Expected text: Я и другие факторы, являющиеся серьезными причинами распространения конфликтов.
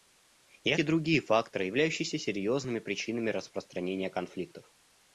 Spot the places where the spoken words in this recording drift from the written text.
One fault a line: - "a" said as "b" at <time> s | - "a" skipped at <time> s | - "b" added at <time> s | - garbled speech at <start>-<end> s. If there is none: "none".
none